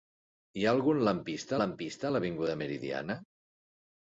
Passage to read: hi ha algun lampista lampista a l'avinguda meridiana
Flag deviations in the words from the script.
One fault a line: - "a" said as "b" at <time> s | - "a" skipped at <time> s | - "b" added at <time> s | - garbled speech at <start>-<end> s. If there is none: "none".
none